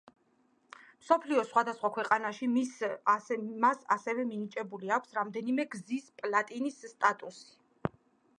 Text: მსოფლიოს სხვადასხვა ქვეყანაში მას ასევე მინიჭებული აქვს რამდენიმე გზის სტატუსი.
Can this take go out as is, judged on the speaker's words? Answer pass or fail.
fail